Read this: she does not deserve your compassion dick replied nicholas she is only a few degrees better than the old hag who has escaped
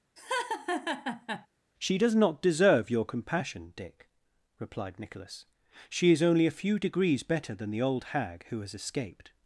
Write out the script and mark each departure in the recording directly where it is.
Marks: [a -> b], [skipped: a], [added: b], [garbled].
she does not deserve your compassion dick replied nicholas she is only a few degrees better than the old hag who has escaped